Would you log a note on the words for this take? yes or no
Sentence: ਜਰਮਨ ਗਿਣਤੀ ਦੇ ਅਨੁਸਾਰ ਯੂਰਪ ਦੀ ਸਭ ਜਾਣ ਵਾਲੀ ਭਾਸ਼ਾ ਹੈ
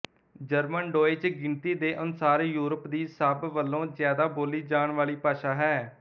yes